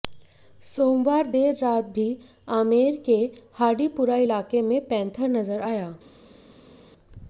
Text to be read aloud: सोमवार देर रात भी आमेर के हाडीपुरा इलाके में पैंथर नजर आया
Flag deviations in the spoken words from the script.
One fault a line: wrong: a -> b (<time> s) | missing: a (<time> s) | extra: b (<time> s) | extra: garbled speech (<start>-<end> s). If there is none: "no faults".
no faults